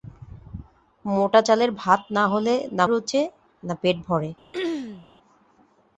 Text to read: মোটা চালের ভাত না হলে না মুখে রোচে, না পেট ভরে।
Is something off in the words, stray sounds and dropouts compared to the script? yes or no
yes